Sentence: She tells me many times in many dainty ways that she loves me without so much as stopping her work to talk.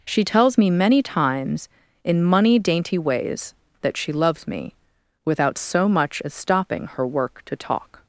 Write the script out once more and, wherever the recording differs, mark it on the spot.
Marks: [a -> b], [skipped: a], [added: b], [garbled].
She tells me many times in [many -> money] dainty ways that she loves me without so much as stopping her work to talk.